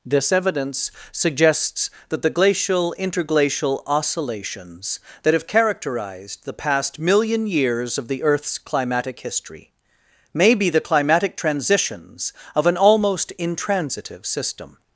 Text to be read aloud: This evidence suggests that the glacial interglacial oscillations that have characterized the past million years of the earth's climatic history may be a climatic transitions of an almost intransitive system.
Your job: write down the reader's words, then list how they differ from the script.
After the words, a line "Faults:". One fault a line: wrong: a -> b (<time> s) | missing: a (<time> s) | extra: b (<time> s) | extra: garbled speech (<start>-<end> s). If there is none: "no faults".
This evidence suggests that the glacial interglacial oscillations that have characterized the past million years of the earth's climatic history may be the climatic transitions of an almost intransitive system.
Faults:
wrong: a -> the (10.7 s)